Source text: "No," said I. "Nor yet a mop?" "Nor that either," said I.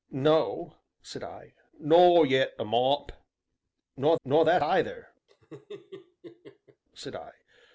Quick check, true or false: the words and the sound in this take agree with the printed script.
false